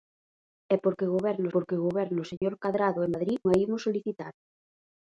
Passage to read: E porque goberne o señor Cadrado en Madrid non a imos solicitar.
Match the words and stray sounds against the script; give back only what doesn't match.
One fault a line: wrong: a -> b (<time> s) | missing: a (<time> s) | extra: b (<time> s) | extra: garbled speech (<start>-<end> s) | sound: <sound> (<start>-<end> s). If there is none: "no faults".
extra: porque goberne (1.5 s)
sound: dropout (2.4-2.4 s)
missing: non (3.4 s)